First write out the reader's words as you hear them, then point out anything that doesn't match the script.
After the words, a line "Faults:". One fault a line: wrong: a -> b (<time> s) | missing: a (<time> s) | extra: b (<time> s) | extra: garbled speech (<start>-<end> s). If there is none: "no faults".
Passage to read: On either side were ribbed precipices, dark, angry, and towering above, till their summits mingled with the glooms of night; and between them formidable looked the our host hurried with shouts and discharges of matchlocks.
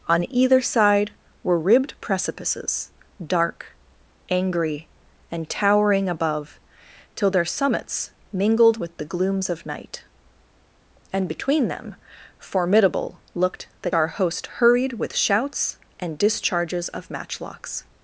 On either side were ribbed precipices, dark, angry, and towering above, till their summits mingled with the glooms of night; and between them formidable looked the our host hurried with shouts and discharges of matchlocks.
Faults:
no faults